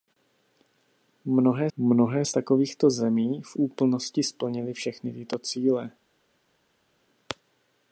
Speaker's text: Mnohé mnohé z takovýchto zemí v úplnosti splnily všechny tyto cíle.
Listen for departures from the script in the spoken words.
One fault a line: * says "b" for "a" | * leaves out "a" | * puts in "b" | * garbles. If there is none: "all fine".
all fine